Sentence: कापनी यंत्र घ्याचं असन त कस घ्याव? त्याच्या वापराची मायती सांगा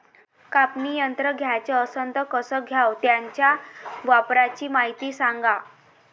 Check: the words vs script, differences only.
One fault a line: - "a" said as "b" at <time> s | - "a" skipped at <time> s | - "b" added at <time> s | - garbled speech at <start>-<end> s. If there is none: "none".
none